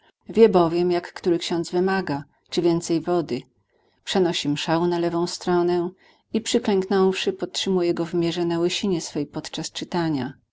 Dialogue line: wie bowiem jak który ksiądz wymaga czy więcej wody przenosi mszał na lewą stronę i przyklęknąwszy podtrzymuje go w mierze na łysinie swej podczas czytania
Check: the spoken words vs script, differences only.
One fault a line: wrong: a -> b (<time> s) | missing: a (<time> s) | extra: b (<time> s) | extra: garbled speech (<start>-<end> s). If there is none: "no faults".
no faults